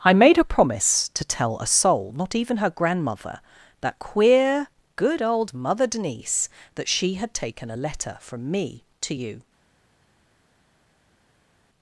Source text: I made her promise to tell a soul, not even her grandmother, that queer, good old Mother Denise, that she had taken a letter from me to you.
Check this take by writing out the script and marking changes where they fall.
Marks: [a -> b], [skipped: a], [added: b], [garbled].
I made her promise to tell a soul, not even her grandmother, that queer, good old Mother Denise, that she had taken a letter from me to you.